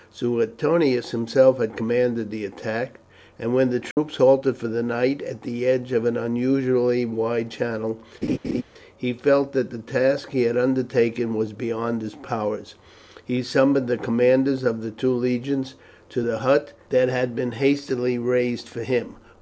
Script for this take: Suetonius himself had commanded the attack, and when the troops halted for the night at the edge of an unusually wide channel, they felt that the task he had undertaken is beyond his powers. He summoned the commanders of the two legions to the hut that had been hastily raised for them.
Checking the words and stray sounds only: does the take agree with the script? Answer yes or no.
no